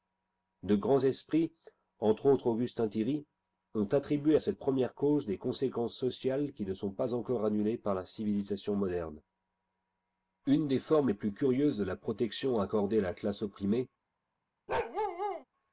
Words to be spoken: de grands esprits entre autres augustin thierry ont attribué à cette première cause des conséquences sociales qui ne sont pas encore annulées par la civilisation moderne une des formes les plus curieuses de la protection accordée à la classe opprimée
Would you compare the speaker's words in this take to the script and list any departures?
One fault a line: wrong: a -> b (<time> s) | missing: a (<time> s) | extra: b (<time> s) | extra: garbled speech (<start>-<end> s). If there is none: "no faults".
no faults